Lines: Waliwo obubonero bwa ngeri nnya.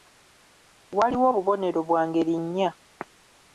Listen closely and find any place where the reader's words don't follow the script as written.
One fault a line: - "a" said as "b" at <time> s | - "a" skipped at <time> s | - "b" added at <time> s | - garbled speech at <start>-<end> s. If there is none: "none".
none